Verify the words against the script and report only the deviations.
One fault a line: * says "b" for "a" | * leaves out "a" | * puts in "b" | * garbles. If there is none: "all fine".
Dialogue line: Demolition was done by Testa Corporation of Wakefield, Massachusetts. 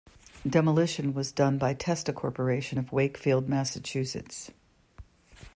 all fine